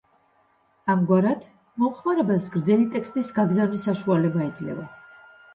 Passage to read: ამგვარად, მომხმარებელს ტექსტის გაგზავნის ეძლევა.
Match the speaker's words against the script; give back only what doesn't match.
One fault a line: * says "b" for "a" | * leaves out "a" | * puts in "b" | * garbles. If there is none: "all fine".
* puts in "გრძელი"
* puts in "საშუალება"